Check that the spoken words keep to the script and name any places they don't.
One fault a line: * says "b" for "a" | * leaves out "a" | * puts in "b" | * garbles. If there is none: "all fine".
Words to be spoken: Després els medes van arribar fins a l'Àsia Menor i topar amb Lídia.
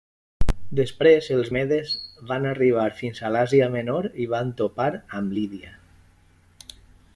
* puts in "van"